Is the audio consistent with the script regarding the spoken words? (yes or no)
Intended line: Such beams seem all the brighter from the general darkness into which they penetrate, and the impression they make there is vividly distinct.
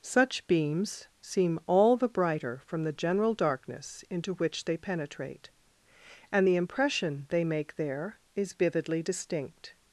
yes